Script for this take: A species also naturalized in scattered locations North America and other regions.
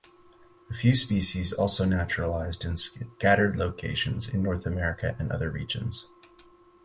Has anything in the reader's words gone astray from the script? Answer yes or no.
yes